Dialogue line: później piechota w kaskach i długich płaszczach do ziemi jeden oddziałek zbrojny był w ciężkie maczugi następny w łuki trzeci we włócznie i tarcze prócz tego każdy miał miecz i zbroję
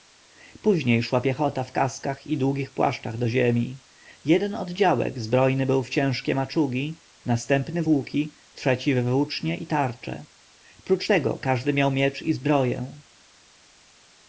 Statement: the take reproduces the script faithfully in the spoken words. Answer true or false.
false